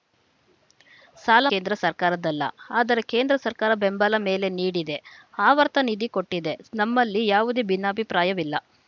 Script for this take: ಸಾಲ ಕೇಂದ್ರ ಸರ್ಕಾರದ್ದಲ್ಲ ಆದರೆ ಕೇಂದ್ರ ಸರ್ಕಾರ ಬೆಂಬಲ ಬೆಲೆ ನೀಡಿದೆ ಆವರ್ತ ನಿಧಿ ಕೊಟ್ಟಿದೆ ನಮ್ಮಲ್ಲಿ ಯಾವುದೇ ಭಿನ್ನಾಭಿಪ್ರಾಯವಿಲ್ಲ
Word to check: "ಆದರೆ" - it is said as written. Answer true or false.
true